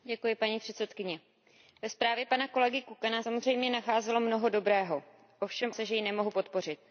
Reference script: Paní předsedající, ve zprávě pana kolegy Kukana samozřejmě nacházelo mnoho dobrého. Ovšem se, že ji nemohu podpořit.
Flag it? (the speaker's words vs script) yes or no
no